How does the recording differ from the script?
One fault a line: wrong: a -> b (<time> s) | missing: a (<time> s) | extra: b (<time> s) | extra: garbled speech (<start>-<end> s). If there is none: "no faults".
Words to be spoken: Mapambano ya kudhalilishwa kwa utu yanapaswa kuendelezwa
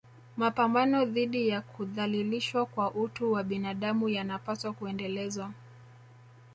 extra: dhidi (1.1 s)
extra: wa binadamu (3.3 s)